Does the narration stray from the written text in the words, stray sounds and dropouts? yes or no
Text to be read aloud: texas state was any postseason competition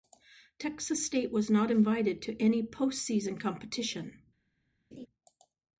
yes